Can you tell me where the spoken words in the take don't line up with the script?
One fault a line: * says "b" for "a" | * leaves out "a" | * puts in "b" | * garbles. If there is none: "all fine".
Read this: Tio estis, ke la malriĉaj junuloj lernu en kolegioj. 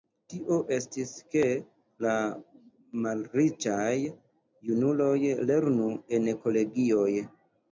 all fine